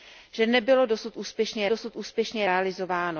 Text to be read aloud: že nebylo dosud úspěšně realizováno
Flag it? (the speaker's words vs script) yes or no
yes